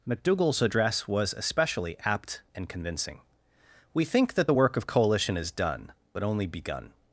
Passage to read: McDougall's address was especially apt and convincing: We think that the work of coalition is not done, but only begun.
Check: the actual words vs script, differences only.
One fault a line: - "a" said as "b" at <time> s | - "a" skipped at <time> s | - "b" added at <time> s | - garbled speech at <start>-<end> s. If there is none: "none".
- "not" skipped at 5.5 s